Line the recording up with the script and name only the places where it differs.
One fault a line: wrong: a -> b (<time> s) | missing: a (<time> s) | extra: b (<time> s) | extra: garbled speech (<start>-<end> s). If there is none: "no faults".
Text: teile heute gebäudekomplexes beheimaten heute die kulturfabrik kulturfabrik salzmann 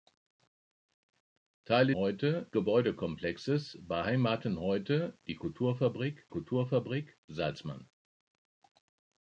no faults